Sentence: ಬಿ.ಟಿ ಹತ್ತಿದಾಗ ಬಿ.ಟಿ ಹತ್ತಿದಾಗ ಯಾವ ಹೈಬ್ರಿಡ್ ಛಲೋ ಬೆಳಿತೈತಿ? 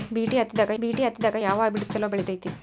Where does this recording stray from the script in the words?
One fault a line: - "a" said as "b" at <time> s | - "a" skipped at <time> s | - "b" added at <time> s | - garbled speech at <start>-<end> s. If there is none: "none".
none